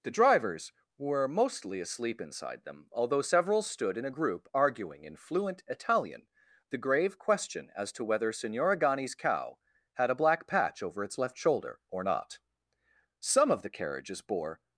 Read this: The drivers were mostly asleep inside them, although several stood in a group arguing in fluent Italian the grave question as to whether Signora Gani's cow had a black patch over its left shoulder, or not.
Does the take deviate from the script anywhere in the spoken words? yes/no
yes